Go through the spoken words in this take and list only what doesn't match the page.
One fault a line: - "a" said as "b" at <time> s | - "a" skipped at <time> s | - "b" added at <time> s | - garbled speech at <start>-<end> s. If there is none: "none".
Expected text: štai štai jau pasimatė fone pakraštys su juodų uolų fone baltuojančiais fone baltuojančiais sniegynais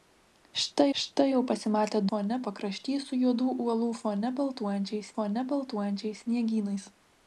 none